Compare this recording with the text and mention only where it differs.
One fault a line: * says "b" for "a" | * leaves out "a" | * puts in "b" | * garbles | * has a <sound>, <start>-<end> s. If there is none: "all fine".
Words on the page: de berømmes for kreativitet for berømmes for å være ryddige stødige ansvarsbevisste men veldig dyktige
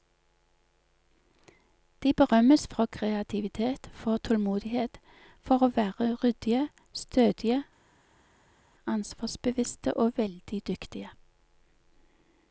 * says "tålmodighet" for "berømmes"
* says "og" for "men"